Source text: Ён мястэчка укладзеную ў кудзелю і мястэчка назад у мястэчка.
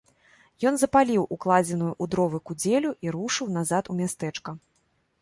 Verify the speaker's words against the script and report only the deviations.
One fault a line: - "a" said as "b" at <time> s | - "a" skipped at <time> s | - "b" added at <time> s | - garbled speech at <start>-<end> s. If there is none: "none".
- "мястэчка" said as "запаліў" at 0.8 s
- "дровы" added at 2.1 s
- "мястэчка" said as "рушыў" at 3.2 s